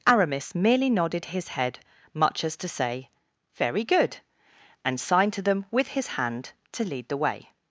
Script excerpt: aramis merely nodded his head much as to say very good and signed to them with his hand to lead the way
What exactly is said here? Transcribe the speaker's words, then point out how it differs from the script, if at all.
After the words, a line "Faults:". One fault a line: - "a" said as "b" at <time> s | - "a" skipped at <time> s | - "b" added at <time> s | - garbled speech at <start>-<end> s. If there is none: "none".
aramis merely nodded his head much as to say very good and signed to them with his hand to lead the way
Faults:
none